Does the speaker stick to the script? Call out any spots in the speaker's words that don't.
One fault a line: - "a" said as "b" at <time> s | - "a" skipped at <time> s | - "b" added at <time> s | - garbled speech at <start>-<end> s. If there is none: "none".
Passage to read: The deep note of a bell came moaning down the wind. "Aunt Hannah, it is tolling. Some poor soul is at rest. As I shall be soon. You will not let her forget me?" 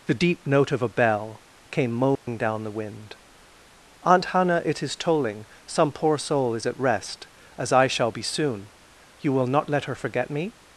none